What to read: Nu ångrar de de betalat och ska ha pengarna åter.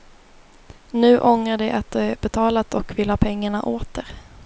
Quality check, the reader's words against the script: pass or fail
fail